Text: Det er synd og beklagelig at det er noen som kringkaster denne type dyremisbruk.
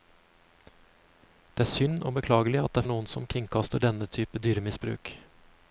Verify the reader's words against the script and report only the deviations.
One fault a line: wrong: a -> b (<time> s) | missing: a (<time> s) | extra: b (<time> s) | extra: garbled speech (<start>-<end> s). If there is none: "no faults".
no faults